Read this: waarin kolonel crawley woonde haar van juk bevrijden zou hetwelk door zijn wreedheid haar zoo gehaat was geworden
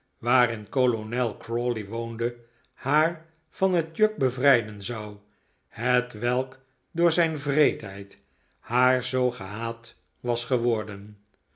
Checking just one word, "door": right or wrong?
right